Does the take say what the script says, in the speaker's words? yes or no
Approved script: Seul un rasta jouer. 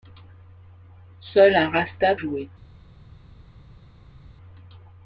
yes